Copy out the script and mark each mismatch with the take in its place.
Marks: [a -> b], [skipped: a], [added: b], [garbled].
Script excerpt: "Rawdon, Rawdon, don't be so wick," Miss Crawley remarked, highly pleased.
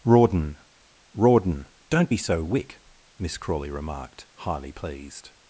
"Rawdon, Rawdon, don't be so wick," Miss Crawley remarked, highly pleased.